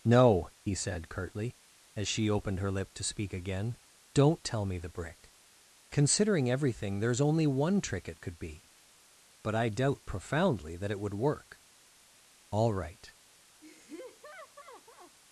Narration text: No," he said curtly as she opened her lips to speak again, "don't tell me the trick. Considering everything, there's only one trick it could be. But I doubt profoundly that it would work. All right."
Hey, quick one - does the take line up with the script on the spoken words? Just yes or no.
no